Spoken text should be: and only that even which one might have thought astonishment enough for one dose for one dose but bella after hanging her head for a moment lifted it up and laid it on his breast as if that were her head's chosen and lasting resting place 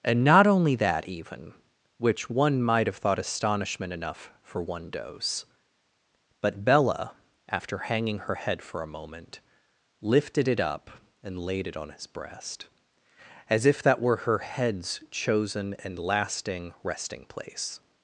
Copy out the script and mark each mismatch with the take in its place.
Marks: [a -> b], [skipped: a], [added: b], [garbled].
and [added: not] only that even which one might have thought astonishment enough for one dose [skipped: for one dose] but bella after hanging her head for a moment lifted it up and laid it on his breast as if that were her head's chosen and lasting resting place